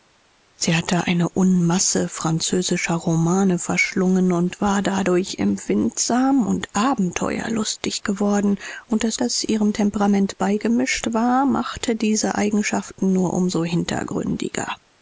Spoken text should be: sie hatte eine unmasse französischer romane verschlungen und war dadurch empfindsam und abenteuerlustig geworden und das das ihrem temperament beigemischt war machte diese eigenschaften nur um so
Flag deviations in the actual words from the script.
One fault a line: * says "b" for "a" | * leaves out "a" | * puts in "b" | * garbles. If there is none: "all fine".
all fine